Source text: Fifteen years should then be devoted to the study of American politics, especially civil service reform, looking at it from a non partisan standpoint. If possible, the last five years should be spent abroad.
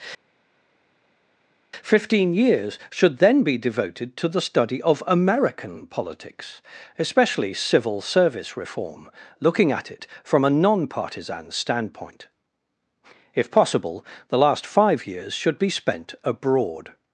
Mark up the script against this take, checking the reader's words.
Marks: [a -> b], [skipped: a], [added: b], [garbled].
Fifteen years should then be devoted to the study of American politics, especially civil service reform, looking at it from a non partisan standpoint. If possible, the last five years should be spent abroad.